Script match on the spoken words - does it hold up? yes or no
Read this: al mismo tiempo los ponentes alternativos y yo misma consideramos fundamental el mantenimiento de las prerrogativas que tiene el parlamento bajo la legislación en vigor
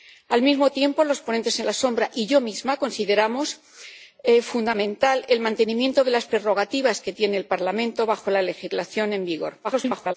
no